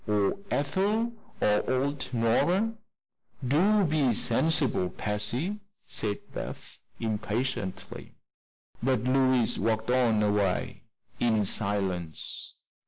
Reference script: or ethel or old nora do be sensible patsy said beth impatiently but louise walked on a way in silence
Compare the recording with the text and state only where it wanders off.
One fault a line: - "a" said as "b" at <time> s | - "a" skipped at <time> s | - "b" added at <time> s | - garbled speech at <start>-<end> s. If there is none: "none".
none